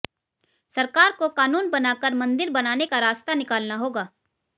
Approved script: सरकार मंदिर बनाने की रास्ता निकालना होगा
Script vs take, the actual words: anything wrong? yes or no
yes